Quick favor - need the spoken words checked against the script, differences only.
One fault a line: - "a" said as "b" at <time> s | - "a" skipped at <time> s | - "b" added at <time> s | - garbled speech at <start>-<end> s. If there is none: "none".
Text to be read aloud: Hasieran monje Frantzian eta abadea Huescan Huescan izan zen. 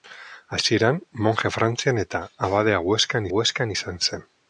none